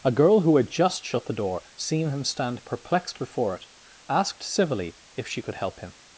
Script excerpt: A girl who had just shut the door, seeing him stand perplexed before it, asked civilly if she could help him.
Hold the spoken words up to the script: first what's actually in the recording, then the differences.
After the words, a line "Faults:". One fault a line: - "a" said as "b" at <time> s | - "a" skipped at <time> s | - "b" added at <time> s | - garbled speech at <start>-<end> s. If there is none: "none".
A girl who had just shut the door, seeing him stand perplexed before it, asked civilly if she could help him.
Faults:
none